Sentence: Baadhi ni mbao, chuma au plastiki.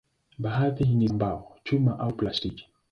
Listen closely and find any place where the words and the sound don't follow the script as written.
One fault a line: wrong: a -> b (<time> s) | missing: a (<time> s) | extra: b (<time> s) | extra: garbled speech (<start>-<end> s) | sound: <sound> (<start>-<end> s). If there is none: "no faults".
no faults